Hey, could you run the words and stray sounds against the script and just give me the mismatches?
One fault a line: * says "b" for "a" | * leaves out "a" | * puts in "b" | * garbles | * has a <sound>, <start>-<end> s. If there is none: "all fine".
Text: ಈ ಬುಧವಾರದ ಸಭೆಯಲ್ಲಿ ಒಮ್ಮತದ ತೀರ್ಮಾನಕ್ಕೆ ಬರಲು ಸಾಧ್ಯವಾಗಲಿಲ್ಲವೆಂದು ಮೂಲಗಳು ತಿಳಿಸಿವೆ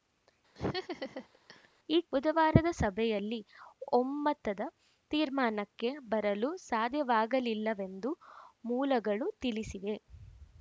* has a laugh, 0.6-1.7 s